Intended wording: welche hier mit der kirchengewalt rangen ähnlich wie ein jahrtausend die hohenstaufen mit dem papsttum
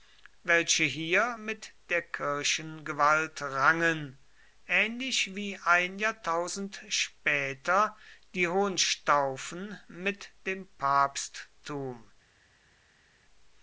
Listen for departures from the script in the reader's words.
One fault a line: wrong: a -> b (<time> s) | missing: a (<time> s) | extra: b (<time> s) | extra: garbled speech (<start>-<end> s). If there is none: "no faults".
extra: später (6.9 s)